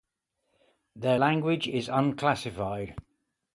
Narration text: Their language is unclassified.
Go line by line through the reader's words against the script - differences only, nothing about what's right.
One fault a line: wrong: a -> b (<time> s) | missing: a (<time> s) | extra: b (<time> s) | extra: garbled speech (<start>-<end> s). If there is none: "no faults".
no faults